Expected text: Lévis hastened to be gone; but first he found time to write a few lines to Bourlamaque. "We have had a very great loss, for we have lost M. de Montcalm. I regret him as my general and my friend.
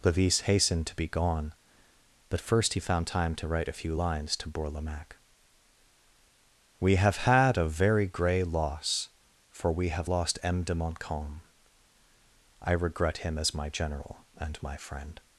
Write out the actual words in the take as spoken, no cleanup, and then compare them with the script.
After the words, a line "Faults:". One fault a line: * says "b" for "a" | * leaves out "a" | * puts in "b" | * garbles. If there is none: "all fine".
Lévis hastened to be gone; but first he found time to write a few lines to Bourlamaque. "We have had a very grey loss, for we have lost M. de Montcalm. I regret him as my general and my friend.
Faults:
* says "grey" for "great"